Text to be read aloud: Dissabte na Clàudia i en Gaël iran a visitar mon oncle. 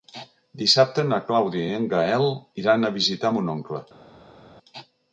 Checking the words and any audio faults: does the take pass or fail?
pass